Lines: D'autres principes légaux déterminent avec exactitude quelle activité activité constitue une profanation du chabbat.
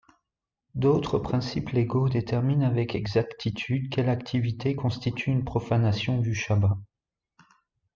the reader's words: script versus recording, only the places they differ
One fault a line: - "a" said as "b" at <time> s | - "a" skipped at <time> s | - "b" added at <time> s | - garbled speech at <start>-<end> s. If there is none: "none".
- "activité" skipped at 4.8 s